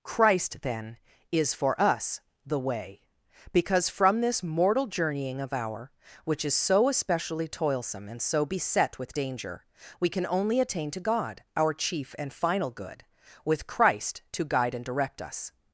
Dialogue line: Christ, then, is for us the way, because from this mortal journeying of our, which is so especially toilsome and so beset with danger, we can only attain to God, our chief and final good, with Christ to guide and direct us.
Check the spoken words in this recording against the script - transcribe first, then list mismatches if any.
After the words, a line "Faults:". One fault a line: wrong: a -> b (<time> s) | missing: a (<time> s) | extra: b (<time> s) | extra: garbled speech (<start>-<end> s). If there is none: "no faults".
Christ, then, is for us the way, because from this mortal journeying of our, which is so especially toilsome and so beset with danger, we can only attain to God, our chief and final good, with Christ to guide and direct us.
Faults:
no faults